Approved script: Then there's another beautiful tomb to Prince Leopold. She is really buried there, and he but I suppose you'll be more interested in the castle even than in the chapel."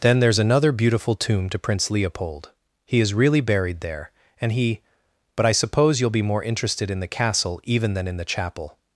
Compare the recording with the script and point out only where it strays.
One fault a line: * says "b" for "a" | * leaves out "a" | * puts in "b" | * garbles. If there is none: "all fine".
* says "He" for "She"